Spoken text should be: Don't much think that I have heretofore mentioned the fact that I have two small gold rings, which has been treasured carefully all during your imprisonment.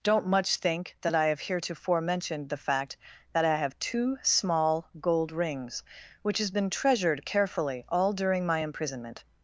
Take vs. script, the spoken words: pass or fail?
fail